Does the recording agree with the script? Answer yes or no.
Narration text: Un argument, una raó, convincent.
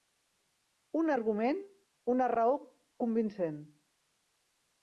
yes